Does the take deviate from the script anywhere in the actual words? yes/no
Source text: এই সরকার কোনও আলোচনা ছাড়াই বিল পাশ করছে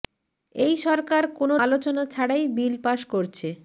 no